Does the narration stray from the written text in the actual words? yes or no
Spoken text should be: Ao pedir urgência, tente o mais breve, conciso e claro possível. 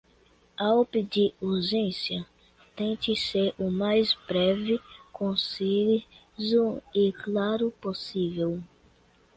yes